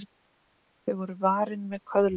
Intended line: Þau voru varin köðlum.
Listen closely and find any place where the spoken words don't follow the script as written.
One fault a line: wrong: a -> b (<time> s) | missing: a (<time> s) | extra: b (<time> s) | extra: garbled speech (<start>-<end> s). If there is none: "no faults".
extra: með (1.7 s)